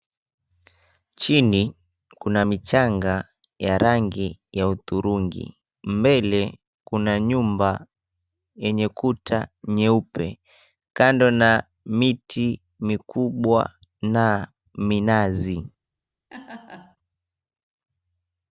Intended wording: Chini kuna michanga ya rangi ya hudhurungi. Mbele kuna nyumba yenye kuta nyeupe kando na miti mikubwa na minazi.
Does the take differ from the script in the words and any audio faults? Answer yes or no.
yes